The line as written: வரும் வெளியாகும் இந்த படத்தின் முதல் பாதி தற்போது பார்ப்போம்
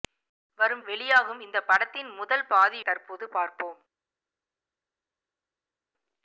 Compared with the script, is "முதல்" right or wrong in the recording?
right